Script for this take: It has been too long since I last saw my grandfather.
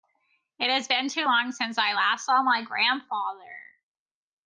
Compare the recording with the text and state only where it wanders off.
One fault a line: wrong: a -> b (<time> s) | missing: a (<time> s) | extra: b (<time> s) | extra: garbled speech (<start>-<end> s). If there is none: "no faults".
no faults